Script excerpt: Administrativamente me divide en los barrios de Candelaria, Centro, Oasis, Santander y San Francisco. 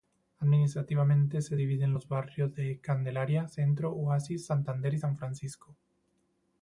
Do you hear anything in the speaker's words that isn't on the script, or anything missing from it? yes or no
yes